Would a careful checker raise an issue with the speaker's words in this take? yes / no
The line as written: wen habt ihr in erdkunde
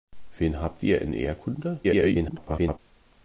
yes